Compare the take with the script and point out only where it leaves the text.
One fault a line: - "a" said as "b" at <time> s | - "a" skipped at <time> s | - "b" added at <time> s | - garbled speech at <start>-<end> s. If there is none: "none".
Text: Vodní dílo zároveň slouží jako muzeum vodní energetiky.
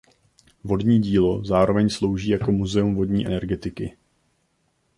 none